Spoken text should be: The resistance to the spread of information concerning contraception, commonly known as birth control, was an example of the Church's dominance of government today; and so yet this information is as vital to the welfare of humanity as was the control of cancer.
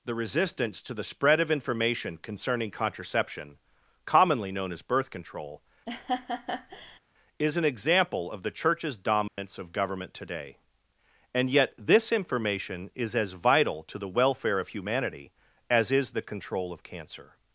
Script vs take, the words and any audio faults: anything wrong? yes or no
yes